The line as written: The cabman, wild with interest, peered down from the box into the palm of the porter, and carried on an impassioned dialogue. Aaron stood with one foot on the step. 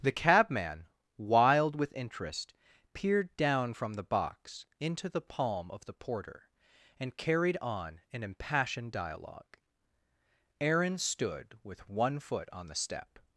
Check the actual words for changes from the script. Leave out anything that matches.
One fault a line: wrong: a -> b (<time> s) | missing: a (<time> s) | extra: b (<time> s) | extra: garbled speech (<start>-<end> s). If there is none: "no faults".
no faults